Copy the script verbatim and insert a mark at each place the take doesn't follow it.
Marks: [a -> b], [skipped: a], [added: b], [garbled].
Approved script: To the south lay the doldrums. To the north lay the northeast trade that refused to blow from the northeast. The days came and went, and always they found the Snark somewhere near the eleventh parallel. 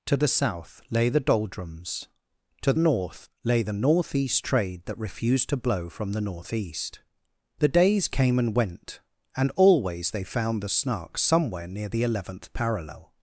To the south lay the doldrums. To [skipped: the] north lay the northeast trade that refused to blow from the northeast. The days came and went, and always they found the Snark somewhere near the eleventh parallel.